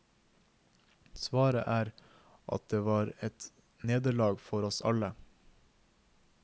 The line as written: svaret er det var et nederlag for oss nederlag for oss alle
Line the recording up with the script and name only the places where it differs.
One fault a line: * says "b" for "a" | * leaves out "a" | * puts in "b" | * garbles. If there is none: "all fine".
* puts in "at"
* leaves out "nederlag for oss"